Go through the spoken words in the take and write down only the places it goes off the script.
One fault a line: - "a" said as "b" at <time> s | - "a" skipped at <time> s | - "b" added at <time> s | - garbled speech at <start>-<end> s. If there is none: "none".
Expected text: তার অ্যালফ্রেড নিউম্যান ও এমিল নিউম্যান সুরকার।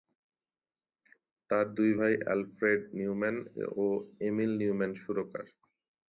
- "দুই ভাই" added at 1.8 s